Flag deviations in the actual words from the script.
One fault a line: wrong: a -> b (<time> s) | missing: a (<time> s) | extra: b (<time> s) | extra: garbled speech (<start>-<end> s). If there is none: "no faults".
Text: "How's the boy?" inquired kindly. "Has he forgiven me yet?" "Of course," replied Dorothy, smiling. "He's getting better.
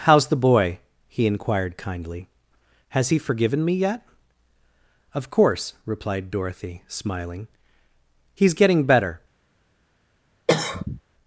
extra: he (1.1 s)